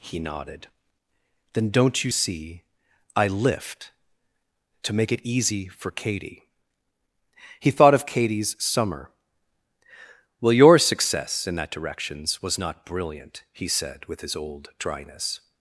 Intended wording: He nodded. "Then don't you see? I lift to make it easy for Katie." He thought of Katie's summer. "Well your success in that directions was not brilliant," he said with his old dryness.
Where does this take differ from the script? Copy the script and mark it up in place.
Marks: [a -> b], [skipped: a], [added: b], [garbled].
He nodded. "Then don't you see? I lift to make it easy for Katie." He thought of Katie's summer. "Well your success in that directions was not brilliant," he said with his old dryness.